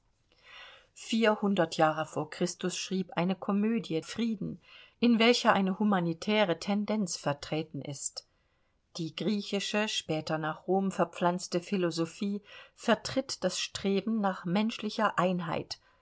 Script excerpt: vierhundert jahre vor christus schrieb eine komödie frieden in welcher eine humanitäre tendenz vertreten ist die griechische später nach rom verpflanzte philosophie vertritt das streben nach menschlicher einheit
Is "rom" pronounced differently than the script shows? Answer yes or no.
no